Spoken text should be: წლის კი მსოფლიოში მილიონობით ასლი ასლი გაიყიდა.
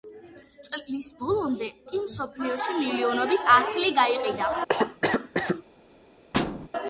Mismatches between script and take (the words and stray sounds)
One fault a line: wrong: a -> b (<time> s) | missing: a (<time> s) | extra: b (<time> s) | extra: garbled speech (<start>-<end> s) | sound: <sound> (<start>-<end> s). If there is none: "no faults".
extra: ბოლომდე (1.2 s)
missing: ასლი (3.9 s)
sound: cough (4.7-5.6 s)
sound: thud (6.3-6.7 s)